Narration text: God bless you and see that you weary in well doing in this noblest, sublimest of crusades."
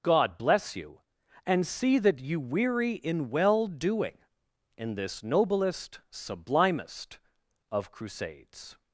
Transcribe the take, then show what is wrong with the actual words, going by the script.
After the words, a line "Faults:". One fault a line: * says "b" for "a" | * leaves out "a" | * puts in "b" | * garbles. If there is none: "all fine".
God bless you and see that you weary in well doing in this noblest, sublimest of crusades."
Faults:
all fine